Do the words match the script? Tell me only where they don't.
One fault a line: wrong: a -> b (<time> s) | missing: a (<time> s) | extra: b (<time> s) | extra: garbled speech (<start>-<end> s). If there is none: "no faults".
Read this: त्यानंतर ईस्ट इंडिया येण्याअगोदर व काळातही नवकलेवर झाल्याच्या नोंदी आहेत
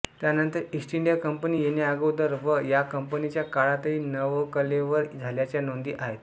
extra: कंपनी (1.2 s)
extra: या कंपनीच्या (2.7 s)